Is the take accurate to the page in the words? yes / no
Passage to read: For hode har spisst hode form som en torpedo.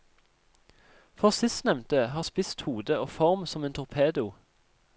no